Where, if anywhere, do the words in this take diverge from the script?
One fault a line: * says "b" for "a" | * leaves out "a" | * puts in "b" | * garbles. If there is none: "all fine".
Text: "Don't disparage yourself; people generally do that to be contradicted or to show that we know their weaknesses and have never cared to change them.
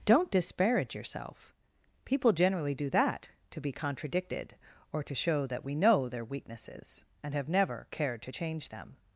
all fine